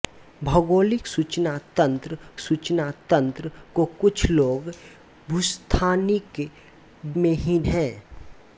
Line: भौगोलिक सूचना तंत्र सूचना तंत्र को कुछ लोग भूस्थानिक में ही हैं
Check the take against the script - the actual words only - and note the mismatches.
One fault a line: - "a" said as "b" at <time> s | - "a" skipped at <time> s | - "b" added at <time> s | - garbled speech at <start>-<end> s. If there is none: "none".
none